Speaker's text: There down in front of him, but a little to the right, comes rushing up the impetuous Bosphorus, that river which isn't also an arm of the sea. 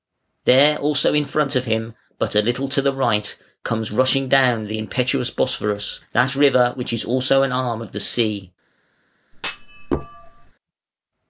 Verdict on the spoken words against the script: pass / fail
fail